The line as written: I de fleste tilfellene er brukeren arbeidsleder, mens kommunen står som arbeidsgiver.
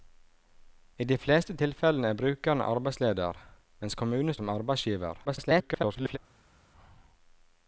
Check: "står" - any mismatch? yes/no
yes